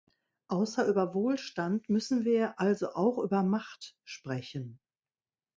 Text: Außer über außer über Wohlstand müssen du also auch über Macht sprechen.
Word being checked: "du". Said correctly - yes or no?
no